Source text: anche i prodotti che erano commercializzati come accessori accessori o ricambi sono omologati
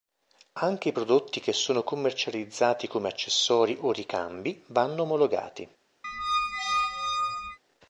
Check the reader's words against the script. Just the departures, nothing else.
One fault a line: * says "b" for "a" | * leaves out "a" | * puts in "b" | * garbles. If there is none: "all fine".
* says "sono" for "erano"
* leaves out "accessori"
* says "vanno" for "sono"